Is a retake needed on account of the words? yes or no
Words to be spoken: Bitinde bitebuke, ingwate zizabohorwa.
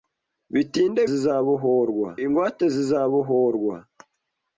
yes